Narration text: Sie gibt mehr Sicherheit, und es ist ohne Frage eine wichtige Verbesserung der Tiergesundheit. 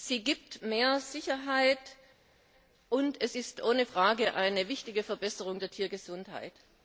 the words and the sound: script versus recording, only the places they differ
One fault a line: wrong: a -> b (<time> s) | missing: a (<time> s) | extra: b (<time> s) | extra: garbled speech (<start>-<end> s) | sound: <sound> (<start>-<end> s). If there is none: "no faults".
no faults